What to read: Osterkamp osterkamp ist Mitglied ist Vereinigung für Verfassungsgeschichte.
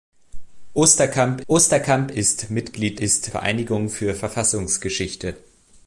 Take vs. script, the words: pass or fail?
pass